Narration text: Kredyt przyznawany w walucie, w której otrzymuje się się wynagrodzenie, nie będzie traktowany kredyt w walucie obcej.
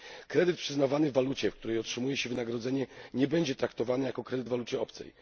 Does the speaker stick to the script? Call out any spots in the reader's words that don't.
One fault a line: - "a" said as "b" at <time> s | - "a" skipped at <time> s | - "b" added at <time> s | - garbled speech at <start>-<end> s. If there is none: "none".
- "się" skipped at 2.3 s
- "jako" added at 4.1 s